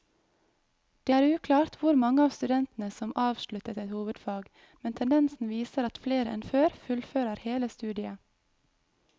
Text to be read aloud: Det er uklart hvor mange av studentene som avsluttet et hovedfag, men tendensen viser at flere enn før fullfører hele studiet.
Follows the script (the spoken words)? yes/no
yes